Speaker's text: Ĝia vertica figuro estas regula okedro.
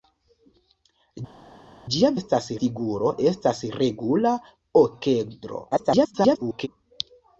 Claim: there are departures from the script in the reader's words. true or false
true